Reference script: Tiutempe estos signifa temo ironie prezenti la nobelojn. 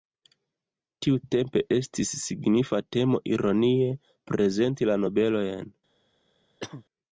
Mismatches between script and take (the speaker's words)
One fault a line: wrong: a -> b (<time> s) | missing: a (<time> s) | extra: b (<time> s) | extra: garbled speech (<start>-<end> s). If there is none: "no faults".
wrong: estos -> estis (1.8 s)